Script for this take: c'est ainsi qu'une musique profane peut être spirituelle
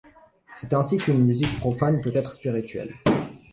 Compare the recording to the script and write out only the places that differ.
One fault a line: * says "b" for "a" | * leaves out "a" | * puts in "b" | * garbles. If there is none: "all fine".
all fine